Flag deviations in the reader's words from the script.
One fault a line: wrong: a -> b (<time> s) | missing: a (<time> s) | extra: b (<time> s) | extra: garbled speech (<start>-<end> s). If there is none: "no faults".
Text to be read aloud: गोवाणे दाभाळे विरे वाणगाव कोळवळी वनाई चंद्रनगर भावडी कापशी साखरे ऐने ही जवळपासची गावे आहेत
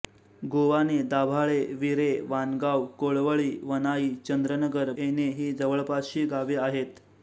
missing: भावडी कापशी साखरे (4.9 s)